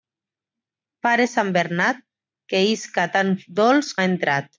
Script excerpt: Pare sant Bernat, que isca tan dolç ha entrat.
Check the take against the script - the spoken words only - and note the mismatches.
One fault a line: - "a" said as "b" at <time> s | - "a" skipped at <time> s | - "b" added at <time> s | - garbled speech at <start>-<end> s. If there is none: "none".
none